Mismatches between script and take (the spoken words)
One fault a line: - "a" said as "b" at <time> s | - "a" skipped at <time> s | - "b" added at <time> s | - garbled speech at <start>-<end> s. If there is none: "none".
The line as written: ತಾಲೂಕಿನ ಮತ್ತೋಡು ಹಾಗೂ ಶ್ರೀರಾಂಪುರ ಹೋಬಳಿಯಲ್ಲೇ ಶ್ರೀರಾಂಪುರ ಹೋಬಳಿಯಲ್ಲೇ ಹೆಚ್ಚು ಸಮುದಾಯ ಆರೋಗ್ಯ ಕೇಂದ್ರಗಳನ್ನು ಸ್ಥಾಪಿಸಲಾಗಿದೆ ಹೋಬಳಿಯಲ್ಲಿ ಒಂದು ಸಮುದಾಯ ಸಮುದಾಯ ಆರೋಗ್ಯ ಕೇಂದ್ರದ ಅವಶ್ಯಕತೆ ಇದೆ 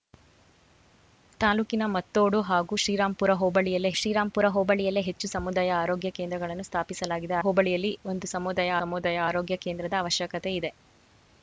none